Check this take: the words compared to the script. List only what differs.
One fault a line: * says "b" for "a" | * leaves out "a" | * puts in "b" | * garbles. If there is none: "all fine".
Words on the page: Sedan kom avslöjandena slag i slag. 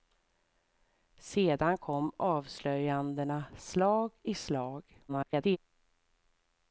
* garbles